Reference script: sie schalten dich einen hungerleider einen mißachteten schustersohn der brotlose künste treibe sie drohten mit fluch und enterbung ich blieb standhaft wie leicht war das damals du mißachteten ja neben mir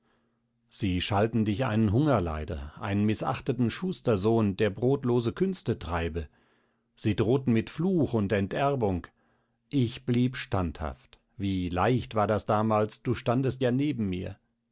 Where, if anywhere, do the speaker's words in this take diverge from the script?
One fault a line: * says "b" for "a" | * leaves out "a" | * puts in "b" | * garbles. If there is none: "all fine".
* says "standest" for "mißachteten"